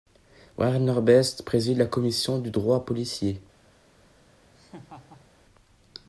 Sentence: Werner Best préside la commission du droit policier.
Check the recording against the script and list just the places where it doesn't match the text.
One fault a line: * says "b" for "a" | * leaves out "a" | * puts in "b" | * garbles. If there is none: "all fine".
all fine